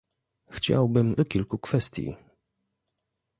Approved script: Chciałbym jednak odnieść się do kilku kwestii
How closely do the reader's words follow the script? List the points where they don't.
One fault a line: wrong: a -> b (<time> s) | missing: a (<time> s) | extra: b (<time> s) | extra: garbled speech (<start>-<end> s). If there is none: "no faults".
missing: jednak odnieść się (1.1 s)